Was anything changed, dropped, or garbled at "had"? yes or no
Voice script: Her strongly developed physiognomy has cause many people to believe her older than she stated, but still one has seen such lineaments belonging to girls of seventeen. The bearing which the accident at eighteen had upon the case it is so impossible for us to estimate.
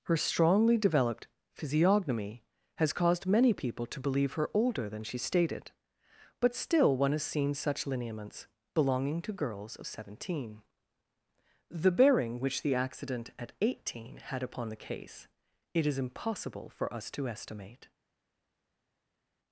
no